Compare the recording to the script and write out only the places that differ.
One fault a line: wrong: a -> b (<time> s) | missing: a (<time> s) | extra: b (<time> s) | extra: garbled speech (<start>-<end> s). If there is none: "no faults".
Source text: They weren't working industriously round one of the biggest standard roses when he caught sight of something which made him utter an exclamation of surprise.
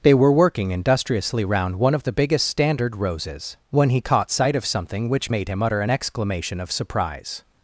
wrong: weren't -> were (0.1 s)